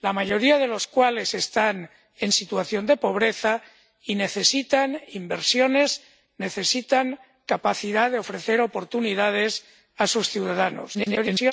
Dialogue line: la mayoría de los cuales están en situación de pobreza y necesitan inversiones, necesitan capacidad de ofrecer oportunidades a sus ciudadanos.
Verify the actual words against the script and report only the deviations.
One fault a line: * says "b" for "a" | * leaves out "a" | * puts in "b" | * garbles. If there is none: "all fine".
* garbles